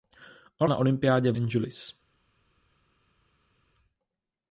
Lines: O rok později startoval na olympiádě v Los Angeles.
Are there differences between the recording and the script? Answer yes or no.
yes